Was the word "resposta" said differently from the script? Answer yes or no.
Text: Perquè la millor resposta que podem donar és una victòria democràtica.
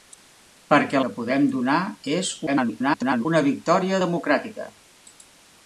yes